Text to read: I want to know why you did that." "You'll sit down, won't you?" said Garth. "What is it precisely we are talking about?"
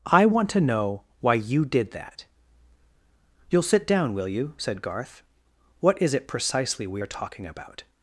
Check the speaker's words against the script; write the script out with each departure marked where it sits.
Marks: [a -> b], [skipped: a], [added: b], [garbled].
I want to know why you did that." "You'll sit down, [won't -> will] you?" said Garth. "What is it precisely we are talking about?"